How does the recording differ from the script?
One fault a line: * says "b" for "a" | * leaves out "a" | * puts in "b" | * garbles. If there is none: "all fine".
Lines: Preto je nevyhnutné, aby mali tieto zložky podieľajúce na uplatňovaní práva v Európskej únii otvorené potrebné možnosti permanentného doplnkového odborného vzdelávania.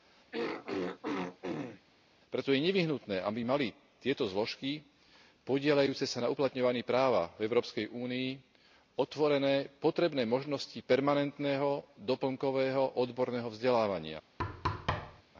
* puts in "sa"